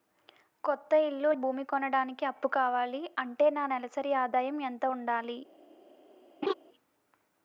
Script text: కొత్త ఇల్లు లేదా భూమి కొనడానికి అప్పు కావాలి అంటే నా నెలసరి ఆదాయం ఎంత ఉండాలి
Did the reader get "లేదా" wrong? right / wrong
wrong